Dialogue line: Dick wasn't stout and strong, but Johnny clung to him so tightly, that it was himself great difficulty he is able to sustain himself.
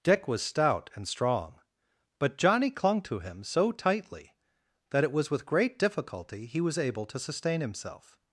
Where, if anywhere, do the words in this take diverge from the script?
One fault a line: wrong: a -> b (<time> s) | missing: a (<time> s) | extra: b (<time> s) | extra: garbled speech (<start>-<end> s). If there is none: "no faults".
wrong: wasn't -> was (0.3 s)
wrong: himself -> with (5.3 s)
wrong: is -> was (6.6 s)